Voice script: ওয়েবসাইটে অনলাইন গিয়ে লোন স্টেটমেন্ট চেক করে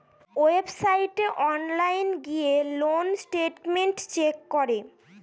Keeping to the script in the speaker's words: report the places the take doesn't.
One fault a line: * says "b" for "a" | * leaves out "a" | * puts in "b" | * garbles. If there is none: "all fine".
all fine